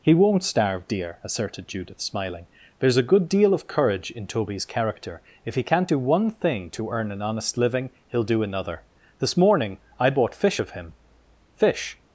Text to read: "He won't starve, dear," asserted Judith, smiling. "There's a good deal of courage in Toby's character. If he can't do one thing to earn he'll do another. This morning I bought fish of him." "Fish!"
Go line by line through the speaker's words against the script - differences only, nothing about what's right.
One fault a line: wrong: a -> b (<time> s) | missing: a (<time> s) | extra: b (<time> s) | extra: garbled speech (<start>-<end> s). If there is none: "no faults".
extra: an honest living (7.1 s)